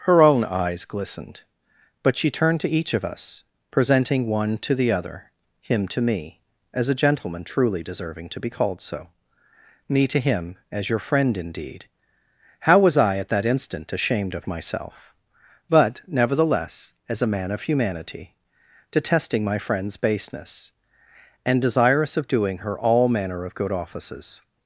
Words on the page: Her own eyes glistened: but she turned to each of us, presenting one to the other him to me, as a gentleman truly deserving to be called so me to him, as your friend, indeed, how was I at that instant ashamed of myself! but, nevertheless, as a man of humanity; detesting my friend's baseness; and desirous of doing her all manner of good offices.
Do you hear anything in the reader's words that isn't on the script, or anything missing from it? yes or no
no